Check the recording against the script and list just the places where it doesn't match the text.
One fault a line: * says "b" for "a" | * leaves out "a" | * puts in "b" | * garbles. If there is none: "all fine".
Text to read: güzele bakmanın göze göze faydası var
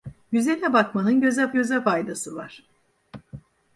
all fine